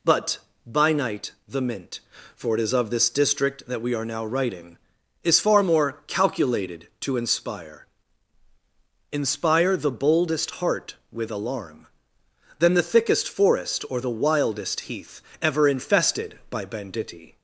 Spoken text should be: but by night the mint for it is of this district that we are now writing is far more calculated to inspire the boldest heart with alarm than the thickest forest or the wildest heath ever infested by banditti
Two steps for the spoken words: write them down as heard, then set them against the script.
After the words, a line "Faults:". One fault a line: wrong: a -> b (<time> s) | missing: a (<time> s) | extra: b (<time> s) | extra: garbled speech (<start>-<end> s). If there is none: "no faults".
but by night the mint for it is of this district that we are now writing is far more calculated to inspire inspire the boldest heart with alarm than the thickest forest or the wildest heath ever infested by banditti
Faults:
extra: inspire (9.1 s)